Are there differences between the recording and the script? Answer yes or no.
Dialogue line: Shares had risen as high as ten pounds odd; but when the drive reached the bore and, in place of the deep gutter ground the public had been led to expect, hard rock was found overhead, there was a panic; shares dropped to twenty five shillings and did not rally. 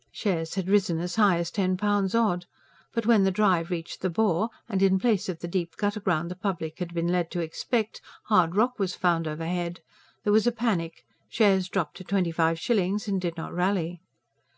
no